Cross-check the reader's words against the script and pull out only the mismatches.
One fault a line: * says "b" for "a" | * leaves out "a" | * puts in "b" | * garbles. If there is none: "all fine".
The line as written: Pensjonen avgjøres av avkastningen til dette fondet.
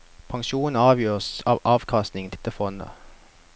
* leaves out "til"